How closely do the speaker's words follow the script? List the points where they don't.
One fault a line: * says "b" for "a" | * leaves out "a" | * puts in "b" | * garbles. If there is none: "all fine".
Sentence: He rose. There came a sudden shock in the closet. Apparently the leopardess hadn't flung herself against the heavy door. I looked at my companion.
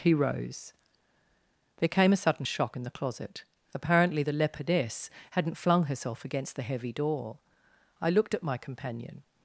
all fine